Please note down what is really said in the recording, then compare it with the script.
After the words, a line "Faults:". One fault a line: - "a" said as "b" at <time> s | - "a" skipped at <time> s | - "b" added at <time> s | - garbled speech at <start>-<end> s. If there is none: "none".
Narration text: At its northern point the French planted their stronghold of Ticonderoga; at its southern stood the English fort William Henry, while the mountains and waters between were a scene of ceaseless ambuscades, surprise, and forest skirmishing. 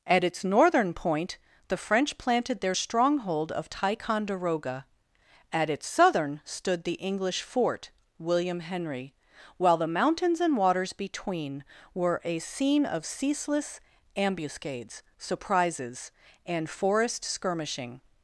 At its northern point the French planted their stronghold of Ticonderoga; at its southern stood the English fort William Henry, while the mountains and waters between were a scene of ceaseless ambuscades, surprises, and forest skirmishing.
Faults:
- "surprise" said as "surprises" at 15.2 s